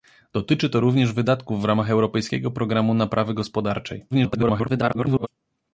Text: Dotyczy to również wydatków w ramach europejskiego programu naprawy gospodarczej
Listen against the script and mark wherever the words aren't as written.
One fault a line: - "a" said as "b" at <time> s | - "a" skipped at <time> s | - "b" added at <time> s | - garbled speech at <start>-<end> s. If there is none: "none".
- garbled speech at 4.1-5.3 s